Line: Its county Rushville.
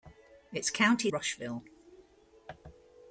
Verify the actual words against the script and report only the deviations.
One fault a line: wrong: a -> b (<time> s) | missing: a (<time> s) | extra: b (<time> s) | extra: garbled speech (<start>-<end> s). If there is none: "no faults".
no faults